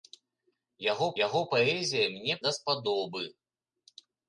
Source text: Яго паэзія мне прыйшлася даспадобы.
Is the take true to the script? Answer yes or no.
no